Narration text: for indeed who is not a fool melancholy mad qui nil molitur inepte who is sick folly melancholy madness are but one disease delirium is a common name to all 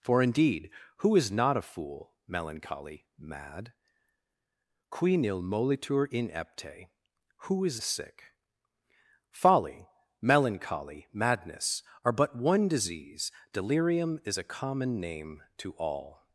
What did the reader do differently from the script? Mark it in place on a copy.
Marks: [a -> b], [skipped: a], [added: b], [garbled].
for indeed who is not a fool melancholy mad qui nil molitur inepte who is sick folly melancholy madness are but one disease delirium is a common name to all